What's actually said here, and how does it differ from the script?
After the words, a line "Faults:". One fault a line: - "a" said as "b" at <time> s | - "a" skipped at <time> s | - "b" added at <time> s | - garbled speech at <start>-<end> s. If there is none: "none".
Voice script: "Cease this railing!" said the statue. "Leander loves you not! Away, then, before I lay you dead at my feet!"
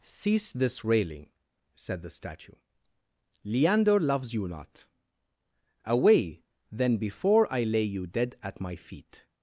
"Cease this railing!" said the statue. "Leander loves you not! Away, then, before I lay you dead at my feet!"
Faults:
none